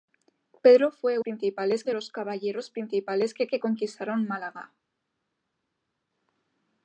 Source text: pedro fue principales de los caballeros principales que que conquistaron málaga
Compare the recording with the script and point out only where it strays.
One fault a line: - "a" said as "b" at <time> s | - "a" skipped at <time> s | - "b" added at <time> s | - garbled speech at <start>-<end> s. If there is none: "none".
none